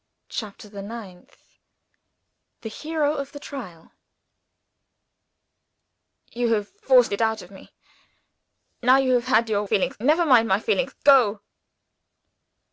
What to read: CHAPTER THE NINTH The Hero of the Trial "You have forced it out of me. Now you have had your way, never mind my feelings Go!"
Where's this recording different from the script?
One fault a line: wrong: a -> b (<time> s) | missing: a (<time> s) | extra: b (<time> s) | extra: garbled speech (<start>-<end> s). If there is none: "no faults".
wrong: way -> feelings (9.6 s)